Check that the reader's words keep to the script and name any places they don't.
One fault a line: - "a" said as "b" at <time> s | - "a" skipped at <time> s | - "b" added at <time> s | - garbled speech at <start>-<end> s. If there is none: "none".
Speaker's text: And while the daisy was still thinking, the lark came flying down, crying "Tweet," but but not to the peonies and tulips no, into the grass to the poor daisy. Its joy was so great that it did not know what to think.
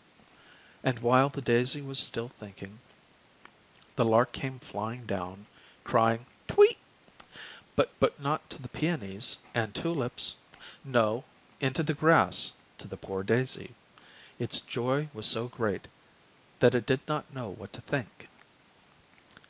none